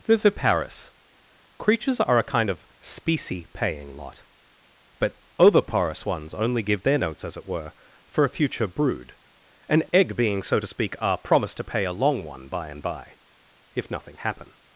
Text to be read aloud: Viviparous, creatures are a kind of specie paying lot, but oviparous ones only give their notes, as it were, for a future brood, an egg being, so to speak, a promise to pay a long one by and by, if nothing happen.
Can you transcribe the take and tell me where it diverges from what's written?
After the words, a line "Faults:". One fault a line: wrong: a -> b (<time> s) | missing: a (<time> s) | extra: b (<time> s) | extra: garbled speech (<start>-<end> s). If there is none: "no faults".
Viviparous, creatures are a kind of specie paying lot, but oviparous ones only give their notes, as it were, for a future brood, an egg being, so to speak, a promise to pay a long one by and by, if nothing happen.
Faults:
no faults